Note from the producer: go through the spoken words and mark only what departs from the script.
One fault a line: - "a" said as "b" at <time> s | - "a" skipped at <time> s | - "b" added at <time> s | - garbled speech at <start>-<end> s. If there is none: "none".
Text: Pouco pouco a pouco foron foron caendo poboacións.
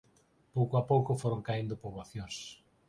- "pouco" skipped at 0.7 s
- "foron" skipped at 1.4 s